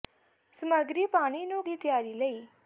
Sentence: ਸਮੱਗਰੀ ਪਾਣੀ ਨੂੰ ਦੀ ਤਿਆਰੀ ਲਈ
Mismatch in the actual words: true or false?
false